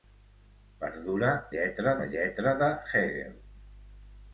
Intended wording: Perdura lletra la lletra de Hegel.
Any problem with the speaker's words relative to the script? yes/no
no